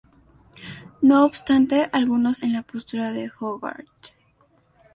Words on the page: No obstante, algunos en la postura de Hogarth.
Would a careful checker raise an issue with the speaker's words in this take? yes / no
no